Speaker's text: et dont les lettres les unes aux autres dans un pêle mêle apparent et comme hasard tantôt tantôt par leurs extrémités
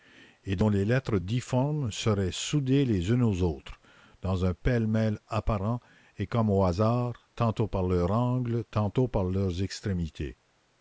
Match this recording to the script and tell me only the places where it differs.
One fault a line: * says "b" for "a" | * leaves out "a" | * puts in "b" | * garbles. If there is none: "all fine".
* puts in "difformes seraient soudées"
* puts in "au"
* puts in "par leurs angles"